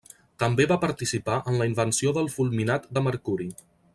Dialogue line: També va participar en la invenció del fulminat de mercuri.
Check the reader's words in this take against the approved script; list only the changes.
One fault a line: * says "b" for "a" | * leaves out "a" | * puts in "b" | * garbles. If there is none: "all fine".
all fine